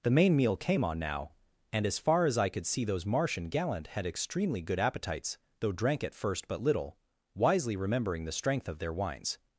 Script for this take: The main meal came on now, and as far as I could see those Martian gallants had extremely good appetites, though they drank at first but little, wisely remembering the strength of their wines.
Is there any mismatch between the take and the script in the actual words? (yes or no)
yes